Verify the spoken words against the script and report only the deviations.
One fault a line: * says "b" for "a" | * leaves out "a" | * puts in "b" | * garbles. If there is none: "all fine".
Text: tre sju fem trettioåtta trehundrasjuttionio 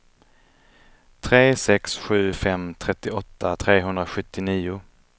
* puts in "sex"